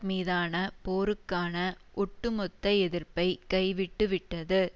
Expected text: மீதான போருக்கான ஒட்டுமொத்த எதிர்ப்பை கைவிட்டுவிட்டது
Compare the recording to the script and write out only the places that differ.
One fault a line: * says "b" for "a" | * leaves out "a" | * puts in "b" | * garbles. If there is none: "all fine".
all fine